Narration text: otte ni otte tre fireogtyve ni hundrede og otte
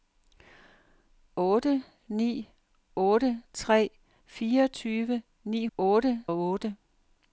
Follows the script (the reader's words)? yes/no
no